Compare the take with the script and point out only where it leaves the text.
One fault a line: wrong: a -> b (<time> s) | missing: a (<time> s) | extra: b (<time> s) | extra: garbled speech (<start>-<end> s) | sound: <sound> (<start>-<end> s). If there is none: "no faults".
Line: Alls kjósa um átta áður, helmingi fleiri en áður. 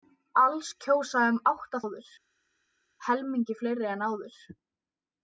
no faults